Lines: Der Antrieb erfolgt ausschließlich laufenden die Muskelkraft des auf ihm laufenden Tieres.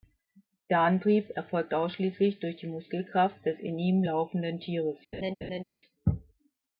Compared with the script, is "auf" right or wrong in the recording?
wrong